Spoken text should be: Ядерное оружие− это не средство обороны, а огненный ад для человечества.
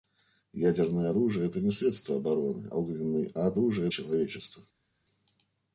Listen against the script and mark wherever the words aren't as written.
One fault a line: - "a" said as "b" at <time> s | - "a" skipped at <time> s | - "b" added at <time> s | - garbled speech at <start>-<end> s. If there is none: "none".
- "а" skipped at 2.7 s
- "для" said as "оружие" at 3.5 s